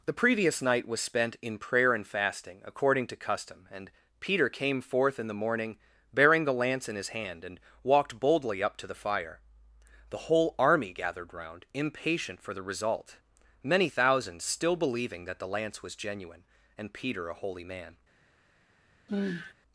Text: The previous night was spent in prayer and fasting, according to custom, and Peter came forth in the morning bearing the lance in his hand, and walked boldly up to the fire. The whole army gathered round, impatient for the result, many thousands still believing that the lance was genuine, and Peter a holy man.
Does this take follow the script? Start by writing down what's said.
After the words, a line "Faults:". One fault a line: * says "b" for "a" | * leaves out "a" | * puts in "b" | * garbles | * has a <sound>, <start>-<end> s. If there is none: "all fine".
The previous night was spent in prayer and fasting, according to custom, and Peter came forth in the morning bearing the lance in his hand, and walked boldly up to the fire. The whole army gathered round, impatient for the result, many thousands still believing that the lance was genuine, and Peter a holy man.
Faults:
* has a sigh, 19.1-19.5 s